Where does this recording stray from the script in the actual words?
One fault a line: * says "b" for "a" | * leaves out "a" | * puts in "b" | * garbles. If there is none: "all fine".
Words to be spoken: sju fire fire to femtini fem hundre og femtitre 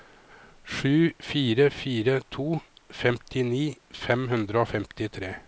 all fine